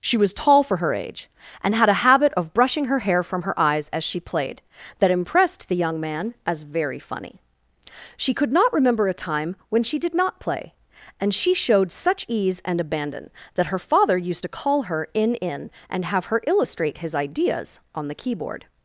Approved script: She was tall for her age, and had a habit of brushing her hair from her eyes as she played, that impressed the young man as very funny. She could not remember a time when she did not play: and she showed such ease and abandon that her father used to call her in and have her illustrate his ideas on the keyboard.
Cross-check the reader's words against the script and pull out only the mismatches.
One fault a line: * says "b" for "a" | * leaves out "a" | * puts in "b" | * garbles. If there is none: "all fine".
* puts in "in"